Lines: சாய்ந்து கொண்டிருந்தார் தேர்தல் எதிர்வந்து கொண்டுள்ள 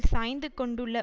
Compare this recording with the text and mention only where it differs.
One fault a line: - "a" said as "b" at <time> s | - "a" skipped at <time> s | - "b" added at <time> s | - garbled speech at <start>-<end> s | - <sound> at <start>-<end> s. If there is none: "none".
- "கொண்டிருந்தார் தேர்தல் எதிர்வந்து" skipped at 0.5 s